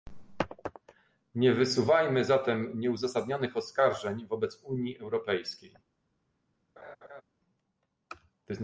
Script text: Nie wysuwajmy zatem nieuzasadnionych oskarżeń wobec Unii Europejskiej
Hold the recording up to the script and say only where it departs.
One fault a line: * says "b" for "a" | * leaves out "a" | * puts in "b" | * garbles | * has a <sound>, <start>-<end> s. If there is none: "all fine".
* has a laugh, 6.8-7.2 s